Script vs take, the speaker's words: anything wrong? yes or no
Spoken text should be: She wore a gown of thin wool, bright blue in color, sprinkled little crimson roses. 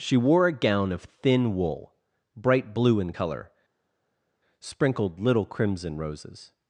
no